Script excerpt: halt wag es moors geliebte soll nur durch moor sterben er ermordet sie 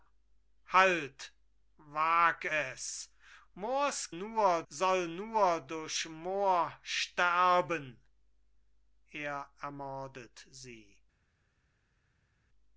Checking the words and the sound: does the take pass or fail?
fail